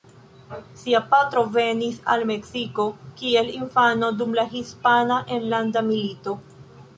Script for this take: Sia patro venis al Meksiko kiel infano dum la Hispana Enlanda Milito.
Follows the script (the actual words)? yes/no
yes